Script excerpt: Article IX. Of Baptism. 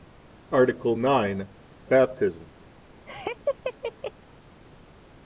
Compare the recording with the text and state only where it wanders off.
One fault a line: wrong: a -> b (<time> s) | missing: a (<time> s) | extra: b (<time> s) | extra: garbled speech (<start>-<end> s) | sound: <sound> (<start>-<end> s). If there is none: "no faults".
missing: Of (1.5 s)
sound: laugh (3.1-4.1 s)